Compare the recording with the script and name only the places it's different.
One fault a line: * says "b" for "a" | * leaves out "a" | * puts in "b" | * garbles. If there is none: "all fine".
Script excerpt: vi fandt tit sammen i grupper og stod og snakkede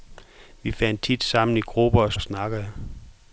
* leaves out "stod"